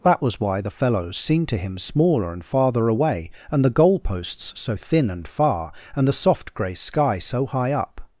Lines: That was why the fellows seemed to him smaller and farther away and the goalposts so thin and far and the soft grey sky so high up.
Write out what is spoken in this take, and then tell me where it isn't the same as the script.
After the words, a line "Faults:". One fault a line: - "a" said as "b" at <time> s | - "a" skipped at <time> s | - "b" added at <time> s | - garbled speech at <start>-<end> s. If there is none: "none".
That was why the fellows seemed to him smaller and farther away and the goalposts so thin and far and the soft grey sky so high up.
Faults:
none